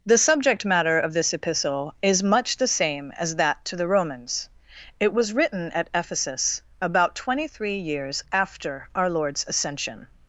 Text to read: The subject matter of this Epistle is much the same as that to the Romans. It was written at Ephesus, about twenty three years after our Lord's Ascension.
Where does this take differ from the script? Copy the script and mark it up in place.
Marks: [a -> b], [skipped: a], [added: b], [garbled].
The subject matter of this Epistle is much the same as that to the Romans. It was written at Ephesus, about twenty three years after our Lord's Ascension.